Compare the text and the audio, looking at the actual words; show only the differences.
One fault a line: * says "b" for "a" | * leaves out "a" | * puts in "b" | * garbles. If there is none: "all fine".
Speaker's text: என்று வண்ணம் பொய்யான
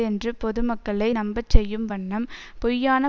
* puts in "பொதுமக்களை நம்பச்செய்யும்"